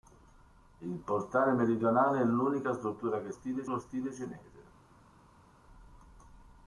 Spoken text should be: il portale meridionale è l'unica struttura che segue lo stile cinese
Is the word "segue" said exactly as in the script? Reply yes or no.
no